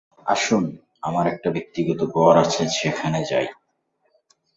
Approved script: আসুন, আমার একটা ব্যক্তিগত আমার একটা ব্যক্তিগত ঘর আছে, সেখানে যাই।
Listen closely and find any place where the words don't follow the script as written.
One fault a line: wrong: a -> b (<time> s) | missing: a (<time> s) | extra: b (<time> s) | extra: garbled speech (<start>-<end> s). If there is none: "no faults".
missing: আমার একটা ব্যক্তিগত (2.0 s)